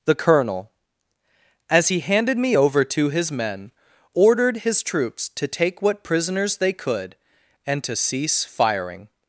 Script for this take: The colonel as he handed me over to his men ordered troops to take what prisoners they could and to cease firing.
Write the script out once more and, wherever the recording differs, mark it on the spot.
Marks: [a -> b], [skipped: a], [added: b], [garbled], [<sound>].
The colonel as he handed me over to his men ordered [added: his] troops to take what prisoners they could and to cease firing.